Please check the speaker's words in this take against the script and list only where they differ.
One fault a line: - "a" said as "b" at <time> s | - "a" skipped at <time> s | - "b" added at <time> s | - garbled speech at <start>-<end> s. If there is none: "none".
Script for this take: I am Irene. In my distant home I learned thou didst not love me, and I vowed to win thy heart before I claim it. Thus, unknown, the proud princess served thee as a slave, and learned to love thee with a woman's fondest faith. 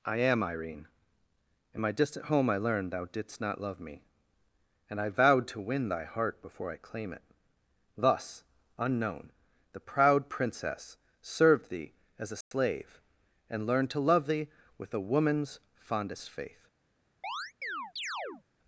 none